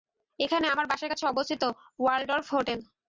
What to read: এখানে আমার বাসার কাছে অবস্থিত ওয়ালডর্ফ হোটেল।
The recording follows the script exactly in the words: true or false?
true